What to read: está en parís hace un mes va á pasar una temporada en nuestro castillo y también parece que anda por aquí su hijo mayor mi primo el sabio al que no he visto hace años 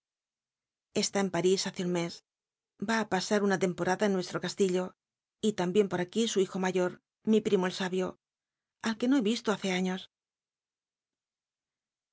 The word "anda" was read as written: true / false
false